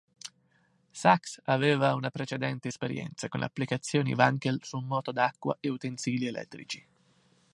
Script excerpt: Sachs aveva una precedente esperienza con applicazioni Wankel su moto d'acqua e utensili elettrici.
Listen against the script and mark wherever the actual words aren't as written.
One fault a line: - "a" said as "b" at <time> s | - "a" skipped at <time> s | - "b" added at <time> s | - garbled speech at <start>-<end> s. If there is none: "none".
none